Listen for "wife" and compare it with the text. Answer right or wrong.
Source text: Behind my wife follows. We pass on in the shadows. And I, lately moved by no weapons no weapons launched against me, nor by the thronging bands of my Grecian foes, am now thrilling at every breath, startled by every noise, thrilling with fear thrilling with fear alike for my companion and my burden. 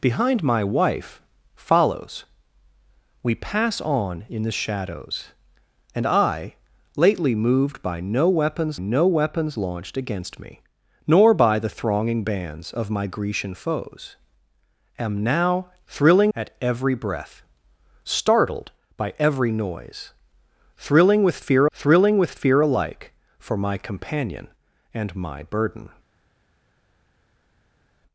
right